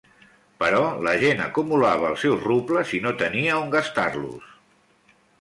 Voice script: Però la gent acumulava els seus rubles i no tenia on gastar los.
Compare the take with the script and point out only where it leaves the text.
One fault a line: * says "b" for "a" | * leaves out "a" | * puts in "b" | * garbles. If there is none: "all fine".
all fine